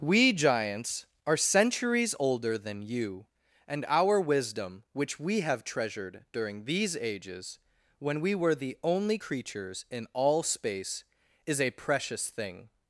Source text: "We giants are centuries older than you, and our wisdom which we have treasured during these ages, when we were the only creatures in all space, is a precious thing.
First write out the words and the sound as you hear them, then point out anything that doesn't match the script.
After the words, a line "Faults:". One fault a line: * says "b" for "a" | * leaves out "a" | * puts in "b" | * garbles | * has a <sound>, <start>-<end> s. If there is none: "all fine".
"We giants are centuries older than you, and our wisdom which we have treasured during these ages, when we were the only creatures in all space, is a precious thing.
Faults:
all fine